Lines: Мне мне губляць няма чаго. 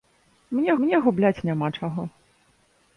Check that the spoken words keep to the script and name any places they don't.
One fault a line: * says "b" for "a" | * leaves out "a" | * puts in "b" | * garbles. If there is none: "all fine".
all fine